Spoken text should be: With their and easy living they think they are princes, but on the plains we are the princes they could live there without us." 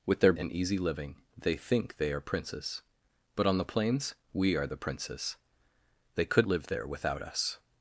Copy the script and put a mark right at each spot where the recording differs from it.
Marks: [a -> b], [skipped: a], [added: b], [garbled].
With their and easy living they think they are princes, but on the plains we are the princes they could live there without us."